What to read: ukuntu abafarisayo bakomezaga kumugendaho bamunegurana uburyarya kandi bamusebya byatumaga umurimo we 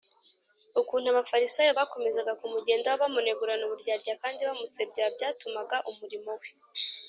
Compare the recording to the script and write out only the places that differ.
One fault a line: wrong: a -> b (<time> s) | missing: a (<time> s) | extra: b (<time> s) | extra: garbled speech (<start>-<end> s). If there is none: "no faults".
no faults